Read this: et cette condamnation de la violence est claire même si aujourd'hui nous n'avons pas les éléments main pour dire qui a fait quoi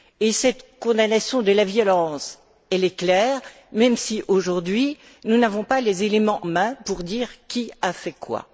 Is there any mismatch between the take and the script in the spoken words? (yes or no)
no